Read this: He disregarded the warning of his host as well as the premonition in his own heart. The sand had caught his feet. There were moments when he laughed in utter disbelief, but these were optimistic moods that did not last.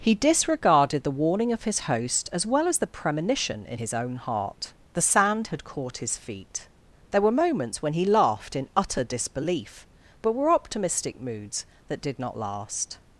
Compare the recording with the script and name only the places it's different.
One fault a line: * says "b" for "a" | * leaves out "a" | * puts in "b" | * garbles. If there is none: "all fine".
* leaves out "these"